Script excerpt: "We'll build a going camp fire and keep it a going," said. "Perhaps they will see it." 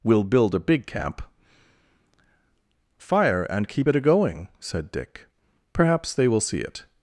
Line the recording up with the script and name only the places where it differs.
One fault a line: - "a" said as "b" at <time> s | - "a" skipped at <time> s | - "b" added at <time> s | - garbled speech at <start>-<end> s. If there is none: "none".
- "going" said as "big" at 0.6 s
- "Dick" added at 4.9 s